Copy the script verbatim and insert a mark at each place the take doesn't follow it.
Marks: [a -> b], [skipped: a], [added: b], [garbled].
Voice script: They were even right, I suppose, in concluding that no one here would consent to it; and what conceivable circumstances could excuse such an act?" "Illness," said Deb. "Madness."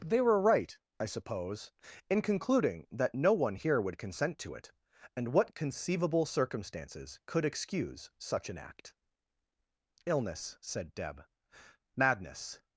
They were [skipped: even] right, I suppose, in concluding that no one here would consent to it; and what conceivable circumstances could excuse such an act?" "Illness," said Deb. "Madness."